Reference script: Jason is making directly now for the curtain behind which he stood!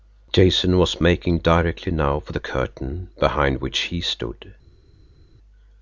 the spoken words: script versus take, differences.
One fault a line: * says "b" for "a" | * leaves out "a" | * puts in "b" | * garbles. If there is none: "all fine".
* says "was" for "is"